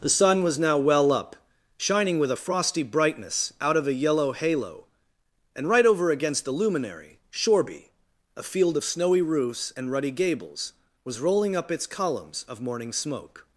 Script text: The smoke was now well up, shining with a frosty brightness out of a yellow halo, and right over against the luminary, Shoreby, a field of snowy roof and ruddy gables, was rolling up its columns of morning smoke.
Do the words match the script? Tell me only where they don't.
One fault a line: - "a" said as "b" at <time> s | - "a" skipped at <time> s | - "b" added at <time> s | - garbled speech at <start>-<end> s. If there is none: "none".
- "smoke" said as "sun" at 0.1 s
- "roof" said as "roofs" at 9.2 s